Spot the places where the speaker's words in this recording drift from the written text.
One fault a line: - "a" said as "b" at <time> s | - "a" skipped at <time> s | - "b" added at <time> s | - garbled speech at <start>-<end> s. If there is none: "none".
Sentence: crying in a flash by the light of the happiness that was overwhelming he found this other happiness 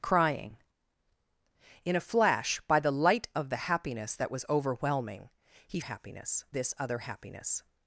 - "found" said as "happiness" at 5.8 s